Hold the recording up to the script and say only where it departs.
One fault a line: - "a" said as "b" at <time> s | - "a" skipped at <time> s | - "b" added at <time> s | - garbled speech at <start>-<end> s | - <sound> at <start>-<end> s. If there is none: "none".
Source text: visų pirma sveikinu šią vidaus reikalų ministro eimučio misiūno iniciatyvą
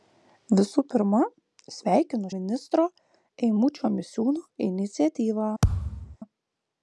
- "šią vidaus reikalų" skipped at 2.3 s
- thud at 5.6-6.2 s